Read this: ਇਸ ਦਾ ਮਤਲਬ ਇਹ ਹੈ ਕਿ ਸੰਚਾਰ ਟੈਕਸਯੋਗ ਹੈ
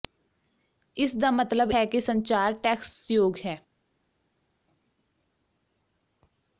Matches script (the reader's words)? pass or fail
fail